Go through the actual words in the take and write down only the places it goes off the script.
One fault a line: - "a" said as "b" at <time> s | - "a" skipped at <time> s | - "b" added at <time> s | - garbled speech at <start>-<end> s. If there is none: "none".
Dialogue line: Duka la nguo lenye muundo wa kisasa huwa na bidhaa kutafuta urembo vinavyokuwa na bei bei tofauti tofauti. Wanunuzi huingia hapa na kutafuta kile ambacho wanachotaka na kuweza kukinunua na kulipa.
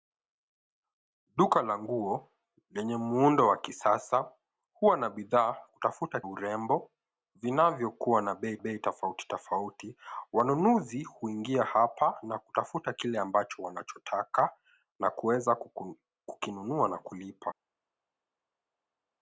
none